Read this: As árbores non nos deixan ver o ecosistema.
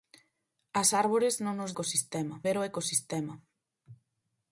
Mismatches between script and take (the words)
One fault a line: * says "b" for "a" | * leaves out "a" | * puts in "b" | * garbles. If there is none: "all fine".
* says "ecosistema" for "deixan"